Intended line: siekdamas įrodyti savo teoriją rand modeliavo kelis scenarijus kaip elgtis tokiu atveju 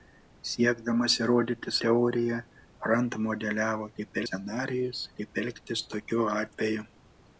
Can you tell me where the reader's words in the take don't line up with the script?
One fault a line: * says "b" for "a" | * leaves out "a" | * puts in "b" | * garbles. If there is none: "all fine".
* leaves out "savo"
* says "kaip" for "kelis"